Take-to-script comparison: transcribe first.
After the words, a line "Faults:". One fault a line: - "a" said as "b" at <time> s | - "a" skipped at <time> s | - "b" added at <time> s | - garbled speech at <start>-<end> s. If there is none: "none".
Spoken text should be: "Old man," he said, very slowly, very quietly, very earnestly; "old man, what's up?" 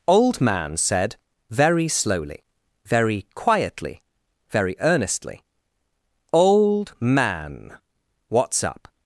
"Old man," said, very slowly, very quietly, very earnestly; "old man, what's up?"
Faults:
- "he" skipped at 0.8 s